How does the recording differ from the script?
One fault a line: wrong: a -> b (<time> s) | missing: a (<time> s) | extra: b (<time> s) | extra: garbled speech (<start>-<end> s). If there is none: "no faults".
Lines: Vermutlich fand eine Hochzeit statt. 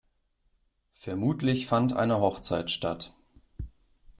no faults